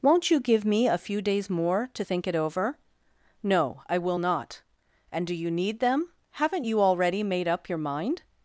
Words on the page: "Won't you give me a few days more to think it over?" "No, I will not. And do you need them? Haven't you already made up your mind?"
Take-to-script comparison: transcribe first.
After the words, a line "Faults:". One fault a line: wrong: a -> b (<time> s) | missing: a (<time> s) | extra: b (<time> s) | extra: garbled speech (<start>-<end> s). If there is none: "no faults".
"Won't you give me a few days more to think it over?" "No, I will not. And do you need them? Haven't you already made up your mind?"
Faults:
no faults